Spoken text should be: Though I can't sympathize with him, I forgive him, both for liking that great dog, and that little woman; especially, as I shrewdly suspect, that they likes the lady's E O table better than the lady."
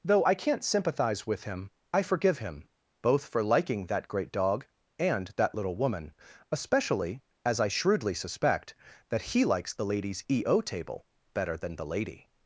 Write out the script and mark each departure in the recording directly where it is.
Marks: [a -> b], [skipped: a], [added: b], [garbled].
Though I can't sympathize with him, I forgive him, both for liking that great dog, and that little woman; especially, as I shrewdly suspect, that [they -> he] likes the lady's E O table better than the lady."